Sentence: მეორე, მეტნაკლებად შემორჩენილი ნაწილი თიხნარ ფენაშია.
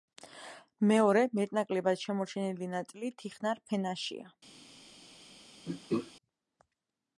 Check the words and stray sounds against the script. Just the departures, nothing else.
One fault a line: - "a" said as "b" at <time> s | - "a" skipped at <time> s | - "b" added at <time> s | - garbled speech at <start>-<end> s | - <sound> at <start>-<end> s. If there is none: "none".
- throat clearing at 5.7-6.1 s